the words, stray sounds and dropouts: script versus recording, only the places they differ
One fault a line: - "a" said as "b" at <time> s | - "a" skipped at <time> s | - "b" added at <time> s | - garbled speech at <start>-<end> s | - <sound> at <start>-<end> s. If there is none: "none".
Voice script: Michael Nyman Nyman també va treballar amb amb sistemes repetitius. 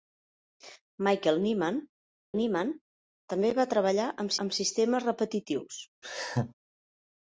- laugh at 6.0-6.5 s